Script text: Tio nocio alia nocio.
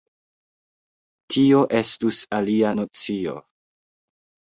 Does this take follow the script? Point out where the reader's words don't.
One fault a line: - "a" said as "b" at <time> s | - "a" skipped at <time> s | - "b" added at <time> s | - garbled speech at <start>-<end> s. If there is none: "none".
- "nocio" said as "estus" at 1.8 s